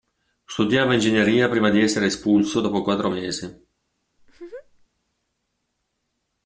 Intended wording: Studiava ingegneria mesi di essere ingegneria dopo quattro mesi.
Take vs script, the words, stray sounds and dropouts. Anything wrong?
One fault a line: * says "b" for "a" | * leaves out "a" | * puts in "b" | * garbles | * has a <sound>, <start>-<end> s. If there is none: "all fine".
* says "prima" for "mesi"
* says "espulso" for "ingegneria"
* has a laugh, 4.2-4.9 s